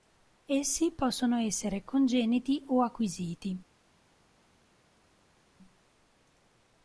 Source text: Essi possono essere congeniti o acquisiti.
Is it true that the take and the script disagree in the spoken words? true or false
false